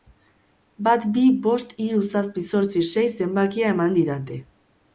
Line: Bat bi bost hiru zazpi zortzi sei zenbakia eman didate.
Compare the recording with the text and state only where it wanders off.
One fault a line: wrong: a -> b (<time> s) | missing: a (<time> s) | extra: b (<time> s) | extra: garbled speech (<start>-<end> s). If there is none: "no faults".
no faults